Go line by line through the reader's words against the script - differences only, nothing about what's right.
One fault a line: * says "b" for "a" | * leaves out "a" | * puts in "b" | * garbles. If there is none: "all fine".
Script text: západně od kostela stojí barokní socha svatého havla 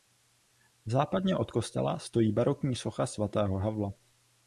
all fine